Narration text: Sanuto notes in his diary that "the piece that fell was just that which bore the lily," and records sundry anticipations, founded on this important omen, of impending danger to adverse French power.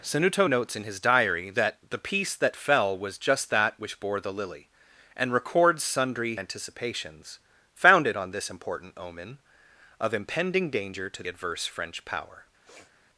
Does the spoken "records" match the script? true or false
true